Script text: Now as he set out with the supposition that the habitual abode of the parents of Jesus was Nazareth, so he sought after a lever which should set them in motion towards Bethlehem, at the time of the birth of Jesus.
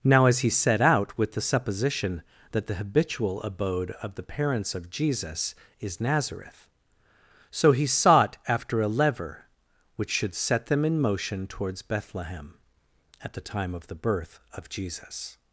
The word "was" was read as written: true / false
false